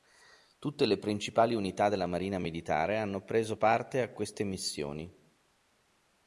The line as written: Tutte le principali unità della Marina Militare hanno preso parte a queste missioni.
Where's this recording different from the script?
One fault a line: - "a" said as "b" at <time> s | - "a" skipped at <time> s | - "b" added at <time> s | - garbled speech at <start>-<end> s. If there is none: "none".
none